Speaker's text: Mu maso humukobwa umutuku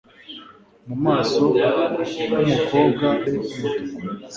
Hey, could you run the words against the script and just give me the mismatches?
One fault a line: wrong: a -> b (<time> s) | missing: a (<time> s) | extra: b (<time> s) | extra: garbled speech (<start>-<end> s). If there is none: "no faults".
no faults